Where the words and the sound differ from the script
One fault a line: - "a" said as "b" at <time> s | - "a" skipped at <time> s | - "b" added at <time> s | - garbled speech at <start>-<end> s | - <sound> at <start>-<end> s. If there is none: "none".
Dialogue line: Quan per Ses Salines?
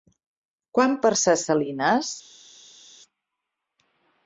none